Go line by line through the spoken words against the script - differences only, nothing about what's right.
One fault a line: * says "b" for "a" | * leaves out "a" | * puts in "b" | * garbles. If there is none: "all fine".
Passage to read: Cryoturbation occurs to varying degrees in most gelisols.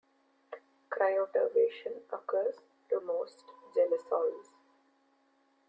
* leaves out "varying degrees in"